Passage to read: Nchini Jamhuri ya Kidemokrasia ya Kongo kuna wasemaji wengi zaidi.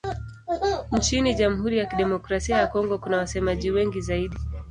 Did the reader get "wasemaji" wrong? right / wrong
right